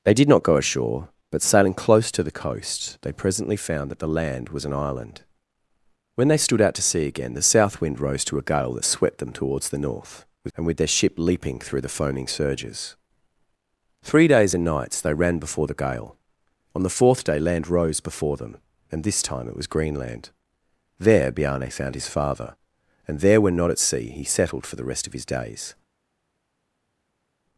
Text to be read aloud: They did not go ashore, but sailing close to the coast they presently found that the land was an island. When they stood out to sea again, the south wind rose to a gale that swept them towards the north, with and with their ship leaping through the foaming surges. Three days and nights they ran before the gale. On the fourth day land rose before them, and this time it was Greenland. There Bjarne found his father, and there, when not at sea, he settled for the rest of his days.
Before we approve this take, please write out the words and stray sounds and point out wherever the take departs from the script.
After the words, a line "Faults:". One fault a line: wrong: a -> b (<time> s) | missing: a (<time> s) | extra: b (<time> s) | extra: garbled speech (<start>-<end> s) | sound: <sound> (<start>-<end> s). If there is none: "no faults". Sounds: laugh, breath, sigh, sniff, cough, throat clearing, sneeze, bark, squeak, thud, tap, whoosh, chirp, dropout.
They did not go ashore, but sailing close to the coast they presently found that the land was an island. When they stood out to sea again, the south wind rose to a gale that swept them towards the north, with and with their ship leaping through the foaming surges. Three days and nights they ran before the gale. On the fourth day land rose before them, and this time it was Greenland. There Bjarne found his father, and there, when not at sea, he settled for the rest of his days.
Faults:
no faults